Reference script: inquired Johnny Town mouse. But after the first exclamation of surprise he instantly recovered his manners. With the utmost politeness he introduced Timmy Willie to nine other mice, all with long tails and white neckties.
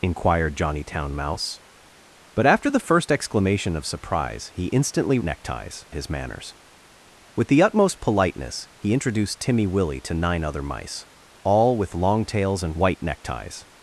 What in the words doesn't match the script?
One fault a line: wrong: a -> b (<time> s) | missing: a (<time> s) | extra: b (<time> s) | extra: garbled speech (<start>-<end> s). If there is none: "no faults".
wrong: recovered -> neckties (5.2 s)